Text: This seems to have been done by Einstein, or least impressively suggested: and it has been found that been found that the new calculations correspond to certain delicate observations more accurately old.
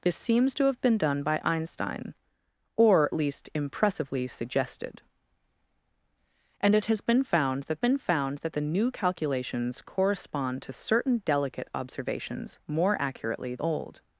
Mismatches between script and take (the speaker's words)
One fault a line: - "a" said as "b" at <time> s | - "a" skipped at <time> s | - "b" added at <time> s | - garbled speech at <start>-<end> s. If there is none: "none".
none